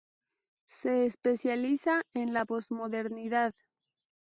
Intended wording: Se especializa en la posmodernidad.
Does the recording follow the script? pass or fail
pass